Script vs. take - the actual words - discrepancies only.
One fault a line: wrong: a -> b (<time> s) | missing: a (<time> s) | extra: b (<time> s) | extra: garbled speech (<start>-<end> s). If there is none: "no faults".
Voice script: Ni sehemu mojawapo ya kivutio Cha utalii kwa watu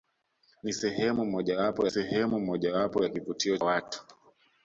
extra: sehemu mojawapo (1.9 s)
missing: Cha utalii kwa (3.6 s)